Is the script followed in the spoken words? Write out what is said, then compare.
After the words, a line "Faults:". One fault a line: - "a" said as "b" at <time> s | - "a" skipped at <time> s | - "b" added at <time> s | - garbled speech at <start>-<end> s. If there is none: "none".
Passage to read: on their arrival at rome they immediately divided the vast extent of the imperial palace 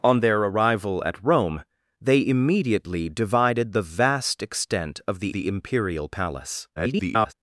on their arrival at rome they immediately divided the vast extent of the the imperial palace [garbled]
Faults:
- "the" added at 5.3 s
- garbled speech at 6.8-7.3 s